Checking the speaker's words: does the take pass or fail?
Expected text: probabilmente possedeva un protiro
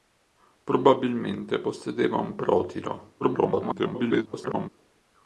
fail